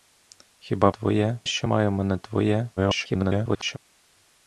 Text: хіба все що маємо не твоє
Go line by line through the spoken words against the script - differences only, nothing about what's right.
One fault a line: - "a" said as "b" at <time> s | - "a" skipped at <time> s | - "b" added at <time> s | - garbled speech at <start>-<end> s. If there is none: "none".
- "все" said as "твоє" at 0.9 s
- garbled speech at 2.8-3.8 s